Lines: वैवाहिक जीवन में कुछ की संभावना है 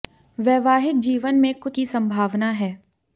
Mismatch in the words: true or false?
false